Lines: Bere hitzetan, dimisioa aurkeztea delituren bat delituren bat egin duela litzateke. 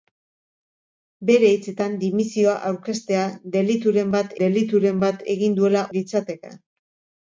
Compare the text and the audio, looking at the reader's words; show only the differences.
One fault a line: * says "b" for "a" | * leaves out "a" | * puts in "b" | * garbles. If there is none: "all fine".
all fine